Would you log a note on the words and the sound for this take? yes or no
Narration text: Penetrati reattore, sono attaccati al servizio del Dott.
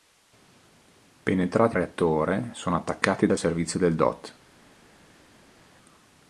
no